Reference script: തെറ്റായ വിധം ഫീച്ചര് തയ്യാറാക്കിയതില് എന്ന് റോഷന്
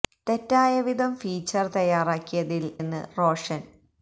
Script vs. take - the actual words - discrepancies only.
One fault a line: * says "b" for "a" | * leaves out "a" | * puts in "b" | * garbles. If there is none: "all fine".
all fine